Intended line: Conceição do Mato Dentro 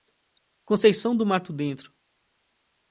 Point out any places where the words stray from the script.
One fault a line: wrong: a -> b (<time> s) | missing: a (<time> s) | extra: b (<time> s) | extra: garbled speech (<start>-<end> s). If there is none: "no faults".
no faults